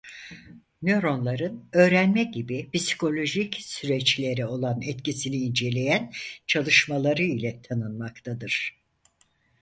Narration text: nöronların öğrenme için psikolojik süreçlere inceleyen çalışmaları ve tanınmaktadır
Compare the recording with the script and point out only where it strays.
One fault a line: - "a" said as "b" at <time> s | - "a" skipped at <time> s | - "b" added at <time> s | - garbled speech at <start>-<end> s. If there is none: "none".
- "için" said as "gibi" at 2.2 s
- "olan etkisini" added at 4.5 s
- "ve" said as "ile" at 7.2 s